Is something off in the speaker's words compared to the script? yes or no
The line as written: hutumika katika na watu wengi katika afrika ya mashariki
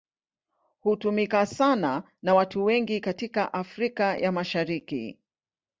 yes